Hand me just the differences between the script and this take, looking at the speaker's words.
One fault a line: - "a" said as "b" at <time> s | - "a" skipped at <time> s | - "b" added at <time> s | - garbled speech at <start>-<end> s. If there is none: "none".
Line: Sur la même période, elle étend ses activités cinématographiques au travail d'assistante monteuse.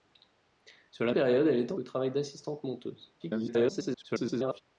- "même" skipped at 1.1 s
- "ses activités cinématographiques" skipped at 1.8 s
- garbled speech at 3.2-4.6 s